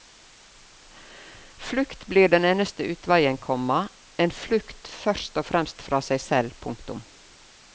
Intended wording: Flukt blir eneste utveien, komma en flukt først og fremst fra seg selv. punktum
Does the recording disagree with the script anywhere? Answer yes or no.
yes